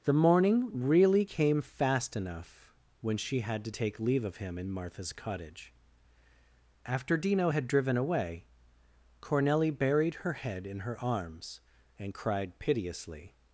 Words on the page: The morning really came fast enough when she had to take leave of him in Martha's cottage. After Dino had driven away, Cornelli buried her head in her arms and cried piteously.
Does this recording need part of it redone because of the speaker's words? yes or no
no